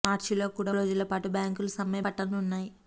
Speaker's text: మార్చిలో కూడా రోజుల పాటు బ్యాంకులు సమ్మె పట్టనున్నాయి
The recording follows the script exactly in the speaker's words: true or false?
true